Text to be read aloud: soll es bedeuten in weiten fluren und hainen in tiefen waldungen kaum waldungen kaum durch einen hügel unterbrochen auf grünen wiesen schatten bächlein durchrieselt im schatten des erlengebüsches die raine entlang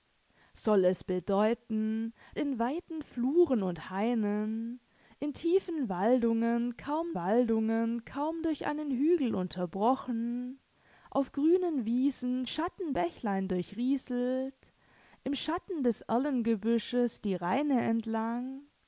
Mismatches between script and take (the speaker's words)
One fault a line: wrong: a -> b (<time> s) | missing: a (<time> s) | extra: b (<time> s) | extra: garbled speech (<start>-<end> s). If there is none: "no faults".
no faults